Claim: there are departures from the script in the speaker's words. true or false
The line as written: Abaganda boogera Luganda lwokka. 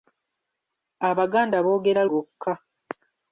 true